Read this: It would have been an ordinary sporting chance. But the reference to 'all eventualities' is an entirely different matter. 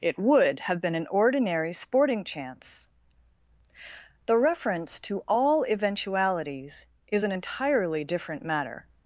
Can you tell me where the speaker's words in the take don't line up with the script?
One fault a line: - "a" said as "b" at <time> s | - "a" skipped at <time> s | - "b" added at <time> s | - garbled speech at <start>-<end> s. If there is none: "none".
- "But" skipped at 2.9 s